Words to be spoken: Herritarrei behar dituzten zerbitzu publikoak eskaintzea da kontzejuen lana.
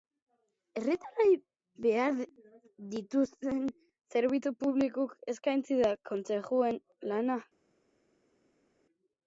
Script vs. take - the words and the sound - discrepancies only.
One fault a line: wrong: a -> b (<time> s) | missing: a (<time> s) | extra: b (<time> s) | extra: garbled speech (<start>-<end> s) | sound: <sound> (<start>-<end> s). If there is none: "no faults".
no faults